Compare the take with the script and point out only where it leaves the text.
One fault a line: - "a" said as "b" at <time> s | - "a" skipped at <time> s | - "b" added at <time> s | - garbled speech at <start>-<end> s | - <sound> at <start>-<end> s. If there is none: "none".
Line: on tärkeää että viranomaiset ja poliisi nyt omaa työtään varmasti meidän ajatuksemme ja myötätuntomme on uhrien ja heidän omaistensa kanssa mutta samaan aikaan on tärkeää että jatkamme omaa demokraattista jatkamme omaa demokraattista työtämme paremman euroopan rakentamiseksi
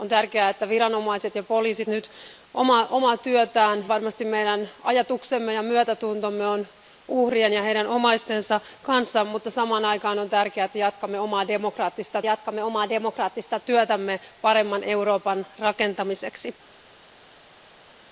none